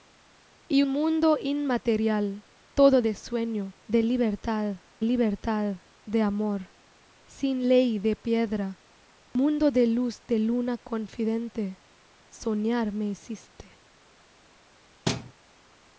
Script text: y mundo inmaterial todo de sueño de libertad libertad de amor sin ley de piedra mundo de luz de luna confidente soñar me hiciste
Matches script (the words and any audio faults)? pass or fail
fail